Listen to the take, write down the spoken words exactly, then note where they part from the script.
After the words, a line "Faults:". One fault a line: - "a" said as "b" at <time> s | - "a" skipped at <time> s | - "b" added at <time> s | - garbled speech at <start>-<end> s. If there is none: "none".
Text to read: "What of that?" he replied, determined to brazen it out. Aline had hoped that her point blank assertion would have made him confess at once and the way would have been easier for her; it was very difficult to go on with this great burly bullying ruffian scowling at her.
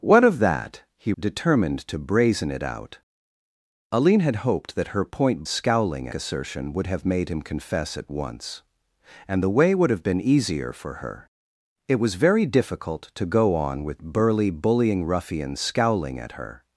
"What of that?" he determined to brazen it out. Aline had hoped that her point scowling assertion would have made him confess at once and the way would have been easier for her; it was very difficult to go on with burly bullying ruffian scowling at her.
Faults:
- "replied" skipped at 1.1 s
- "blank" said as "scowling" at 5.4 s
- "this great" skipped at 14.0 s